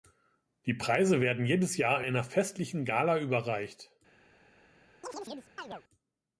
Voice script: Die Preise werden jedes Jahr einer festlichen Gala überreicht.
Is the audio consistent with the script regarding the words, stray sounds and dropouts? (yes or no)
no